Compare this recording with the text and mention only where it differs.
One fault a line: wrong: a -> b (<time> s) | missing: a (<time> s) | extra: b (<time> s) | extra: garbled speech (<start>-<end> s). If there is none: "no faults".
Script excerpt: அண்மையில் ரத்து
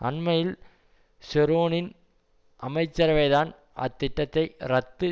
extra: ஷெரோனின் அமைச்சரவைதான் அத்திட்டத்தை (1.2 s)